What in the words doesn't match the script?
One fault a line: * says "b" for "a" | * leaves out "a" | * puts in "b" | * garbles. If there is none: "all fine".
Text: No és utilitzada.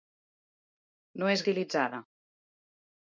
all fine